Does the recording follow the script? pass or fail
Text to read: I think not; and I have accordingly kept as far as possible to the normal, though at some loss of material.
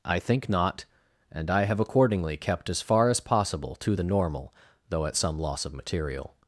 pass